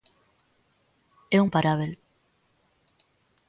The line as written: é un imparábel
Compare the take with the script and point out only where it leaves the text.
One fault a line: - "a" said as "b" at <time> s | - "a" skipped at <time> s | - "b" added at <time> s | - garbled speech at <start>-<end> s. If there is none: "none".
none